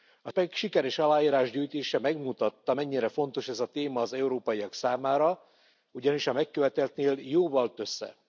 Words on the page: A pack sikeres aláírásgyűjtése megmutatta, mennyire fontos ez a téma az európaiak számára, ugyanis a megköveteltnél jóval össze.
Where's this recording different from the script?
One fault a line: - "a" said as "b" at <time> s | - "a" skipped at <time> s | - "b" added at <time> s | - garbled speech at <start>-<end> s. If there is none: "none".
none